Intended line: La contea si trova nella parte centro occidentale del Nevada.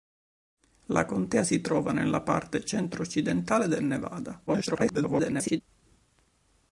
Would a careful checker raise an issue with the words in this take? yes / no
yes